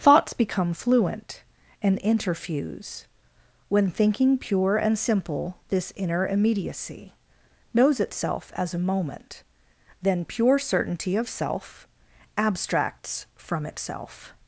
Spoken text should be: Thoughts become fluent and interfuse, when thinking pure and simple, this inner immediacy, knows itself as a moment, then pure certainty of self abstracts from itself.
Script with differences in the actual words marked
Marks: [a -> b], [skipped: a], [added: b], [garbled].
Thoughts become fluent and interfuse, when thinking pure and simple, this inner immediacy, knows itself as a moment, then pure certainty of self abstracts from itself.